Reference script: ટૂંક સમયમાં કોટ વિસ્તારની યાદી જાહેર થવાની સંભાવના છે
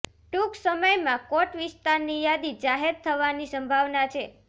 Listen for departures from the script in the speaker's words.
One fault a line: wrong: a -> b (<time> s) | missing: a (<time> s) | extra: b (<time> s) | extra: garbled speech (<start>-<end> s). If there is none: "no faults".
no faults